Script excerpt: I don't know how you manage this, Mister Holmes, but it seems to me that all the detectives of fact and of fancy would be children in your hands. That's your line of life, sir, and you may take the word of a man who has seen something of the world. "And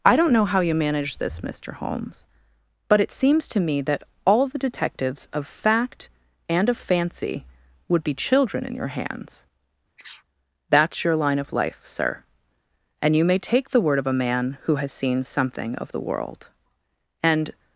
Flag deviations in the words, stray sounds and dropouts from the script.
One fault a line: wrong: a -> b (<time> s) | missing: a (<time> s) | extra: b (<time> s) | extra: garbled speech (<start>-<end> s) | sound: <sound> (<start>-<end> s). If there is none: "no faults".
sound: sneeze (10.0-10.2 s)